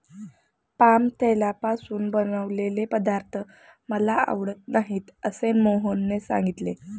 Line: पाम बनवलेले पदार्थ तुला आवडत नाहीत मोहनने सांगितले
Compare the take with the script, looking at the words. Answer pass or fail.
fail